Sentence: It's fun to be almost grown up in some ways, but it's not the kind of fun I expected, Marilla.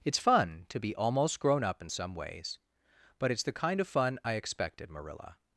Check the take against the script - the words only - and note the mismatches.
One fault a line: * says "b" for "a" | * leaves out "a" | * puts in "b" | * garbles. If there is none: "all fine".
* leaves out "not"